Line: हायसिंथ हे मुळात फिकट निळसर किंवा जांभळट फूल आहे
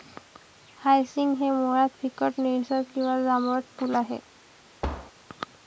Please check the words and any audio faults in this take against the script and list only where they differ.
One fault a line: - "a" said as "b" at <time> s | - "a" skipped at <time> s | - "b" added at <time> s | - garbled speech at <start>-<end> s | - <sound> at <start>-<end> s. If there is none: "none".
- thud at 4.8-5.1 s